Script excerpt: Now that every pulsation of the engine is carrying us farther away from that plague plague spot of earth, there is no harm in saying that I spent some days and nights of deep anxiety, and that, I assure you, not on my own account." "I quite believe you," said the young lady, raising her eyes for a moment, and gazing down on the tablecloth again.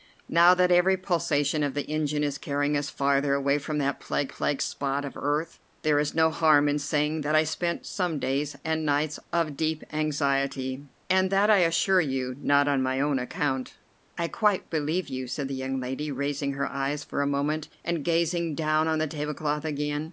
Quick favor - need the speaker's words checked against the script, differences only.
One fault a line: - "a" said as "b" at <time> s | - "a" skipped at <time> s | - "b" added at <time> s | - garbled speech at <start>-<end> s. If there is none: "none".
none